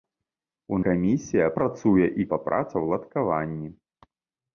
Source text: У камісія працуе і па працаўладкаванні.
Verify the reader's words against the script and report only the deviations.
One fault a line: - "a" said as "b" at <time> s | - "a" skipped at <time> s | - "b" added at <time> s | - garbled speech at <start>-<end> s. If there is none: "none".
none